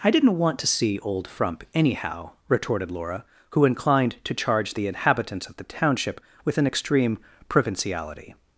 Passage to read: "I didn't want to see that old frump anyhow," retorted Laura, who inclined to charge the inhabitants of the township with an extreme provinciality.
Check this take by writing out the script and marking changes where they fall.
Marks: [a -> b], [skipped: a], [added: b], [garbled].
"I didn't want to see [skipped: that] old frump anyhow," retorted Laura, who inclined to charge the inhabitants of the township with an extreme provinciality.